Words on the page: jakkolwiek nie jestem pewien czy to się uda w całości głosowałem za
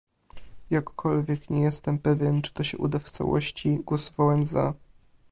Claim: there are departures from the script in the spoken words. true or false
false